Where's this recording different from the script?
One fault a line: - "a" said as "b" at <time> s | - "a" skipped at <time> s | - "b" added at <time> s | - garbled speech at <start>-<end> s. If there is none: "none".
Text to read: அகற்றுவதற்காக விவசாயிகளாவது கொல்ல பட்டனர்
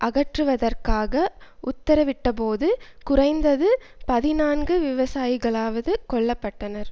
- "உத்தரவிட்டபோது குறைந்தது பதினான்கு" added at 1.6 s